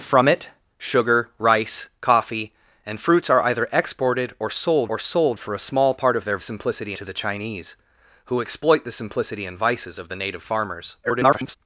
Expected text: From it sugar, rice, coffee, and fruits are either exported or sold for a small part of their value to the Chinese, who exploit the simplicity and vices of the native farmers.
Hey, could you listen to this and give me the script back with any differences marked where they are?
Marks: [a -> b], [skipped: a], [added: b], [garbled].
From it sugar, rice, coffee, and fruits are either exported or sold [added: or sold] for a small part of their [value -> simplicity] to the Chinese, who exploit the simplicity and vices of the native farmers. [garbled]